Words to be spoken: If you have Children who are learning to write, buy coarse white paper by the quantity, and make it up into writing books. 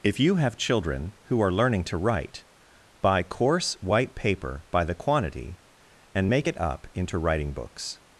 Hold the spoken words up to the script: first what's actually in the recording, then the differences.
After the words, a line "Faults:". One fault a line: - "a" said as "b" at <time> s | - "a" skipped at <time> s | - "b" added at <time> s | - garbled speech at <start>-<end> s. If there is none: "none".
If you have Children who are learning to write, buy coarse white paper by the quantity, and make it up into writing books.
Faults:
none